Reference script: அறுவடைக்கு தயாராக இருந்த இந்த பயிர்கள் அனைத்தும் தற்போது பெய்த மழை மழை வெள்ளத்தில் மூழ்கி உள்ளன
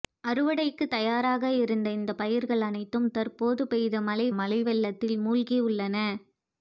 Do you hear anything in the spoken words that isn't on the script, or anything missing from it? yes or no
no